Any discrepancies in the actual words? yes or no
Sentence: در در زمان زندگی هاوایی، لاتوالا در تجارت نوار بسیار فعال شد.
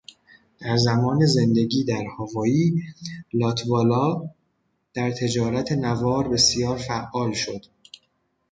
yes